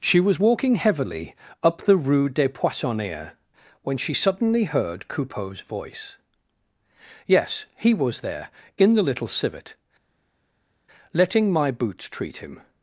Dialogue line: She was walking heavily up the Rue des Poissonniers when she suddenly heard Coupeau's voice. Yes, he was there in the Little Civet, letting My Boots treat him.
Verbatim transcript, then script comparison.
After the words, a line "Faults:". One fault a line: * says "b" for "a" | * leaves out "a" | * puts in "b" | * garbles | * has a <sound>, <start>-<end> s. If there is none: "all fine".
She was walking heavily up the Rue des Poissonniers when she suddenly heard Coupeau's voice. Yes, he was there in the Little Civet, letting My Boots treat him.
Faults:
all fine